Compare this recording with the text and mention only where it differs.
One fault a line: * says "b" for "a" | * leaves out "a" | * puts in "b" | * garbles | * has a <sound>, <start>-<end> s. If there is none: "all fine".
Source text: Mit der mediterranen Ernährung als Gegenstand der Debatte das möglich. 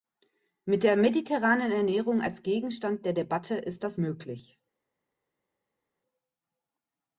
* puts in "ist"